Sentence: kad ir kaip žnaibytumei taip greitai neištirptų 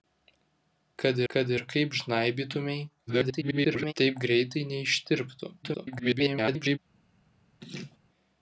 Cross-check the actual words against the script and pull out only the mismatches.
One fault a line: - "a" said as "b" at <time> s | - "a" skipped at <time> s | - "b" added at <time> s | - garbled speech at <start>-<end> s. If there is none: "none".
- "kad" added at 1.3 s
- garbled speech at 3.1-3.9 s
- garbled speech at 5.6-6.8 s